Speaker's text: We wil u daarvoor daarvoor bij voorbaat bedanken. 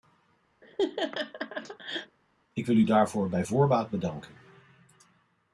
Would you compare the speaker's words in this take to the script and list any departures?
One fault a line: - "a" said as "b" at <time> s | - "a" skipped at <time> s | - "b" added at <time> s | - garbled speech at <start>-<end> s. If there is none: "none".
- "We" said as "Ik" at 2.5 s
- "daarvoor" skipped at 3.3 s